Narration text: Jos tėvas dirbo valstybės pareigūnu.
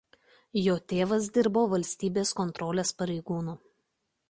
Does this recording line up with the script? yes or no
no